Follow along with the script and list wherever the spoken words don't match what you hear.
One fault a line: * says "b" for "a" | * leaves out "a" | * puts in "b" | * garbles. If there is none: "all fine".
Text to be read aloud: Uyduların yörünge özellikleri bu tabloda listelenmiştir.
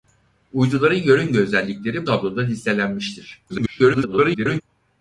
* leaves out "bu"
* garbles